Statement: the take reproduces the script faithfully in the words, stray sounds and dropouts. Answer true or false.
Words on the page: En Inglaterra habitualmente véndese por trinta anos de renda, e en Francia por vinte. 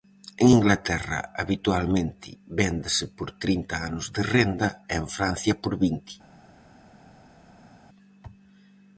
true